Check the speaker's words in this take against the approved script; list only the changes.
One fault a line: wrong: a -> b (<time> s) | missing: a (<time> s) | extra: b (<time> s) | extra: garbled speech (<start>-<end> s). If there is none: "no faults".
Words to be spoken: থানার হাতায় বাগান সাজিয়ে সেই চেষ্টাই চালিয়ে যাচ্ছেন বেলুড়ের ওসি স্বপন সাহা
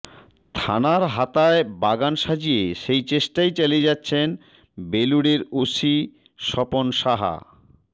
no faults